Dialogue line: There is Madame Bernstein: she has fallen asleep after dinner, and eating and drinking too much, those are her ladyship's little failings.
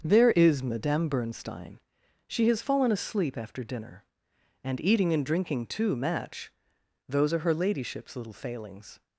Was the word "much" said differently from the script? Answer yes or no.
yes